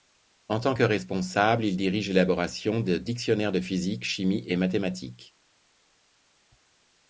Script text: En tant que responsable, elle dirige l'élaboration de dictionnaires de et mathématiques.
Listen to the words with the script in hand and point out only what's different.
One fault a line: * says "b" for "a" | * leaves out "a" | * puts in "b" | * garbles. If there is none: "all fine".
* says "il" for "elle"
* puts in "physique chimie"